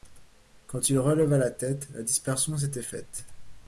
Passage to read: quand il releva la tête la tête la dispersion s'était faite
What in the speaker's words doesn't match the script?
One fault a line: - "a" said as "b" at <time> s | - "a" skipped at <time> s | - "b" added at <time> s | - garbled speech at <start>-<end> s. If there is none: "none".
- "tête la" skipped at 2.0 s